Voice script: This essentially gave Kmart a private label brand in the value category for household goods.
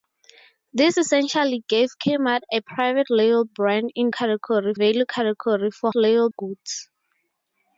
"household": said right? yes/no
no